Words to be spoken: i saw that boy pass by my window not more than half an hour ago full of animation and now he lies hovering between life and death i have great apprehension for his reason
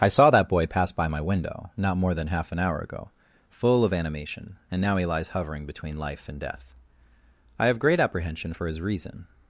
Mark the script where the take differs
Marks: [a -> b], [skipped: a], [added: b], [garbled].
i saw that boy pass by my window not more than half an hour ago full of animation and now he lies hovering between life and death i have great apprehension for his reason